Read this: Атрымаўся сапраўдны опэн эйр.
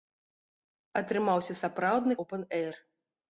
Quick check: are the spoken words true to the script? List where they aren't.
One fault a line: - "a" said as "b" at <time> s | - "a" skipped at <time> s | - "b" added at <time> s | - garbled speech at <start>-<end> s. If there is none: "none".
none